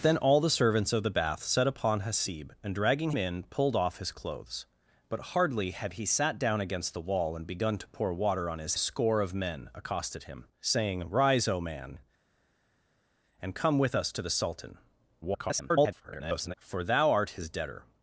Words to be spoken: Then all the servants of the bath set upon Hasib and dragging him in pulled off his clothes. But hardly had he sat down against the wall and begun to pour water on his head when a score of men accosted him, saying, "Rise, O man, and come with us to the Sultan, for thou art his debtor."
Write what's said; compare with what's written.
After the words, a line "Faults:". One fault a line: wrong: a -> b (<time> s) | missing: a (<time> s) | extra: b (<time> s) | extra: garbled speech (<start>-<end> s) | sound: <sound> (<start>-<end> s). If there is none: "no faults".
Then all the servants of the bath set upon Hasib and dragging in pulled off his clothes. But hardly had he sat down against the wall and begun to pour water on his a score of men accosted him, saying, "Rise, O man, and come with us to the Sultan, [garbled] for thou art his debtor."
Faults:
missing: him (3.1 s)
missing: head when (8.8 s)
extra: garbled speech (15.2-16.5 s)